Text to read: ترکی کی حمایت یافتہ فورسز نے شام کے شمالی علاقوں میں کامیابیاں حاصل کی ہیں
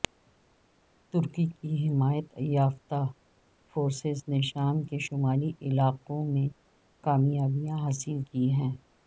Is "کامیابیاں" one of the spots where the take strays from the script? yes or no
no